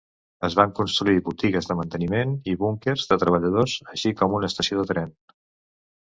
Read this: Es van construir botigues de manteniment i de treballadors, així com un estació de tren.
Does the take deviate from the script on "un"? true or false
true